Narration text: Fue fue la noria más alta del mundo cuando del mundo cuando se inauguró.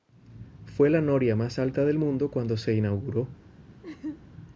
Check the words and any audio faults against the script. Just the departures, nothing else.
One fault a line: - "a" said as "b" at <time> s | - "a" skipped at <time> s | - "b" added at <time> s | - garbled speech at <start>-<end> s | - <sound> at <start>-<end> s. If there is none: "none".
- "fue" skipped at 0.9 s
- "del mundo cuando" skipped at 2.6 s
- laugh at 3.8-4.2 s